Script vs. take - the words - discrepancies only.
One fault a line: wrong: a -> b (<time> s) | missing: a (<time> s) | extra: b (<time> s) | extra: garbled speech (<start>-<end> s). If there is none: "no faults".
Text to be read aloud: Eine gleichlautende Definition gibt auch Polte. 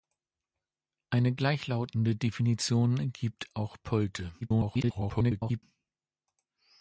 extra: garbled speech (4.4-5.6 s)